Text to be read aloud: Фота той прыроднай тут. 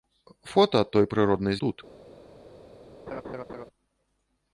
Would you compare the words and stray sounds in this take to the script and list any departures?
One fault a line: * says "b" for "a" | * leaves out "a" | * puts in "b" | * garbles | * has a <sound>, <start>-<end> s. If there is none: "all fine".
* has a laugh, 3.1-3.7 s